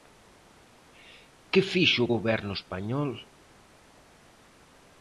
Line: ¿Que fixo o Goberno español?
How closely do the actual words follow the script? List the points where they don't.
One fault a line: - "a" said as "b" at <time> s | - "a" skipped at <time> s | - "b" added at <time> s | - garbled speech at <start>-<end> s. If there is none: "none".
none